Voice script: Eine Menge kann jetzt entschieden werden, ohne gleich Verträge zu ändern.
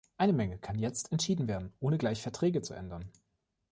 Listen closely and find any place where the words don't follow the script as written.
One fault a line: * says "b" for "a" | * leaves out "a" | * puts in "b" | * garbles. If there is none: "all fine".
all fine